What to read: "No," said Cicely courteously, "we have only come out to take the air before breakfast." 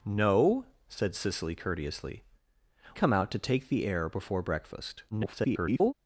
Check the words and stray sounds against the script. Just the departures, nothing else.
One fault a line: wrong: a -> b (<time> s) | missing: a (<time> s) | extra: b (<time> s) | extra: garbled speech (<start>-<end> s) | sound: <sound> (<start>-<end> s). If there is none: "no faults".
missing: we have only (2.2 s)
extra: garbled speech (5.1-5.9 s)